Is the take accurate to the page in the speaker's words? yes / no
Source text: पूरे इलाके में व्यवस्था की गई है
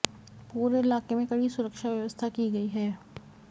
no